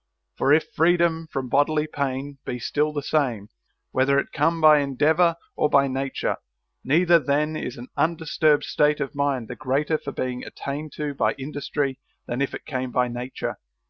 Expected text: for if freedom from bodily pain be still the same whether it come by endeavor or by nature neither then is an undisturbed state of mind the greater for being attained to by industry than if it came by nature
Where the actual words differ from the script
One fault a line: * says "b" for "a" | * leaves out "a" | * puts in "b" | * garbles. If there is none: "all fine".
all fine